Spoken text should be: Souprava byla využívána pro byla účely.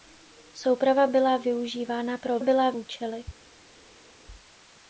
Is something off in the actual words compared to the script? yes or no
no